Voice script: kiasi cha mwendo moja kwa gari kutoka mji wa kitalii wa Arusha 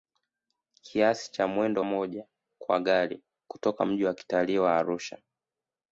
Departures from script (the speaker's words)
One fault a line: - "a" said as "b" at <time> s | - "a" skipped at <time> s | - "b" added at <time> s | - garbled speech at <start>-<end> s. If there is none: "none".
none